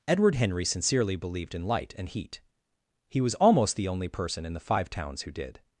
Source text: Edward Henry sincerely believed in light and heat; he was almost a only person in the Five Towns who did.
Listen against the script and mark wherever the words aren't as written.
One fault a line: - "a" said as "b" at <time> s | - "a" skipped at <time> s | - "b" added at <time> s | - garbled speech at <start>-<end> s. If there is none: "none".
- "a" said as "the" at 3.8 s